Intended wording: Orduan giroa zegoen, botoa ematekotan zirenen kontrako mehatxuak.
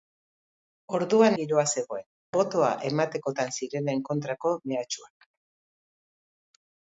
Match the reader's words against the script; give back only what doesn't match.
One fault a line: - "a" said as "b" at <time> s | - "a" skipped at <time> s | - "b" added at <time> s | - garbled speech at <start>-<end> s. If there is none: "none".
none